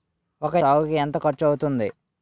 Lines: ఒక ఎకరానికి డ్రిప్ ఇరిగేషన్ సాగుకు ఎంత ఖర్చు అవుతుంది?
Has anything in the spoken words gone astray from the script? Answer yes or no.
yes